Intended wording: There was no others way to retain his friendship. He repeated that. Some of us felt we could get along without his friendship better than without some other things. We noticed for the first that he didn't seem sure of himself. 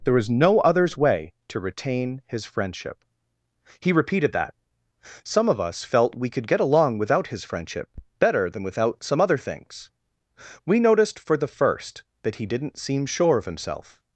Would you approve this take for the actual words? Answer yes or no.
yes